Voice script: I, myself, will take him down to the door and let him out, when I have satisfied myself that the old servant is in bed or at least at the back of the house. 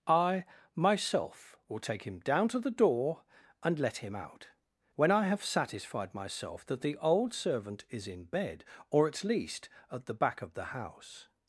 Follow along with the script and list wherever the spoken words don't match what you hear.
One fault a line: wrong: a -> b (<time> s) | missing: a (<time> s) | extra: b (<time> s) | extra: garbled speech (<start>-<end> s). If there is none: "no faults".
no faults